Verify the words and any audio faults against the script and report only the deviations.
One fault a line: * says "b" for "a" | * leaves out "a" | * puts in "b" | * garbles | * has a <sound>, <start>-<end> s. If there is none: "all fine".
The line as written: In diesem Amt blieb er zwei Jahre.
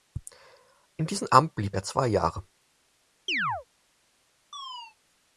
* has a chirp, 3.3-3.7 s
* has a chirp, 4.5-5.0 s